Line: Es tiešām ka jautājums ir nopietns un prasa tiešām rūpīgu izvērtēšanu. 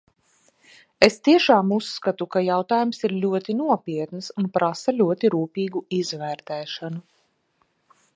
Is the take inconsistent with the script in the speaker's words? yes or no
yes